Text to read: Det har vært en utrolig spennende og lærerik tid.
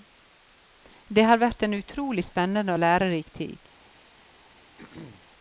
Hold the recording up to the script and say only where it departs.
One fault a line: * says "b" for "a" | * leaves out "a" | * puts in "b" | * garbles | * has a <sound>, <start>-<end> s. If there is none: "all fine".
* has a throat clearing, 4.8-5.3 s